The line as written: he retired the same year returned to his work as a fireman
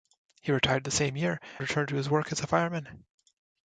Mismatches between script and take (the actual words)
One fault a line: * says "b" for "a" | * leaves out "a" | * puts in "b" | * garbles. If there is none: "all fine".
all fine